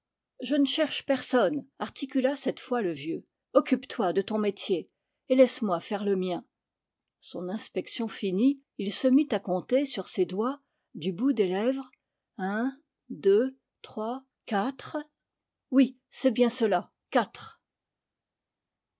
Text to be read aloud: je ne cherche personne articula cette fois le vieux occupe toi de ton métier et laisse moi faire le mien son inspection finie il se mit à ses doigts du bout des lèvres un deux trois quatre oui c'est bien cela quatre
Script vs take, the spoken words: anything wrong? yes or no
yes